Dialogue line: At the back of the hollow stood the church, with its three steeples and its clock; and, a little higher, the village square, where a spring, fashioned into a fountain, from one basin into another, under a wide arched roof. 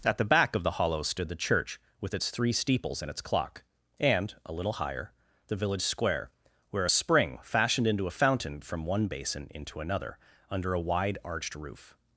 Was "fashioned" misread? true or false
false